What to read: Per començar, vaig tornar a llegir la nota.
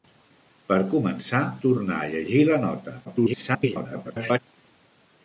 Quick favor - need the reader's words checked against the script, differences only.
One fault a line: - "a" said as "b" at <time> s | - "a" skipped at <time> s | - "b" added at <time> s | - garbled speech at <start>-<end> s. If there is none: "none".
- "vaig" skipped at 1.4 s
- garbled speech at 3.0-4.4 s